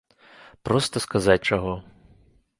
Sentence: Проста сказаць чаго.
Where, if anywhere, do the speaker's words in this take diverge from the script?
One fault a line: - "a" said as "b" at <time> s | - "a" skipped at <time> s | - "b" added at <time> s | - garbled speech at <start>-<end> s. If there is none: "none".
none